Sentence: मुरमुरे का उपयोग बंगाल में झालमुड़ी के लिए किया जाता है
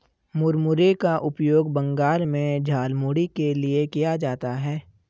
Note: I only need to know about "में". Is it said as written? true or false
true